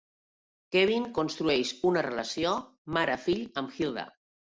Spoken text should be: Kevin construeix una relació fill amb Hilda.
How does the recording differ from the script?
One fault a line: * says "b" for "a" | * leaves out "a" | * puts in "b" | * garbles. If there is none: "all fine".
* puts in "mare"